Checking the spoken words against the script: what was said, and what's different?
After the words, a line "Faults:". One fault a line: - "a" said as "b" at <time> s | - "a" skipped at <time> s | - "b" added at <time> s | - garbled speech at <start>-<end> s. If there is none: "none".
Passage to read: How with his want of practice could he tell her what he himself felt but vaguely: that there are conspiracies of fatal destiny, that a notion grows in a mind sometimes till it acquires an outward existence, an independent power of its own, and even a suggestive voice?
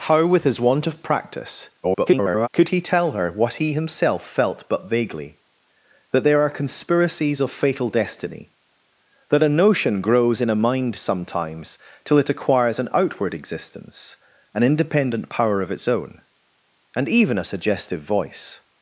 How with his want of practice [garbled] could he tell her what he himself felt but vaguely: that there are conspiracies of fatal destiny, that a notion grows in a mind sometimes till it acquires an outward existence, an independent power of its own, and even a suggestive voice?
Faults:
- garbled speech at 1.8-2.5 s